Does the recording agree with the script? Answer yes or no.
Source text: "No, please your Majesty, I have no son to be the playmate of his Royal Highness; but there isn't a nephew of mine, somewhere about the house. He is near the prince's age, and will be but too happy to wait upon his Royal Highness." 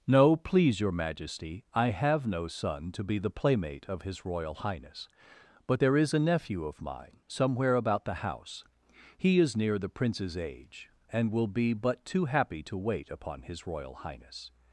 no